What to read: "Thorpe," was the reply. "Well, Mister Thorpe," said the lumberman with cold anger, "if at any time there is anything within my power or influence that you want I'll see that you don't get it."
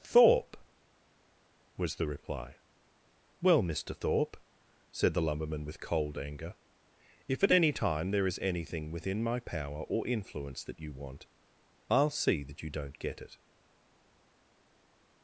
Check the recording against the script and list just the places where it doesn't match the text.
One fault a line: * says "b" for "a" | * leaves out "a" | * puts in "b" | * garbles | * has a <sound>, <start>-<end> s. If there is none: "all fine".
all fine